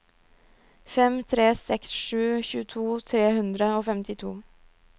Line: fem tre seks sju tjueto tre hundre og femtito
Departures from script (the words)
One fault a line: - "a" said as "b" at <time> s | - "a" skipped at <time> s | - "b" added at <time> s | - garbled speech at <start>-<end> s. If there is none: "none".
none